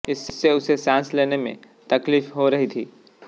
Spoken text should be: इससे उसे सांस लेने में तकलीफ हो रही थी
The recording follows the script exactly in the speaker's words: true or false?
true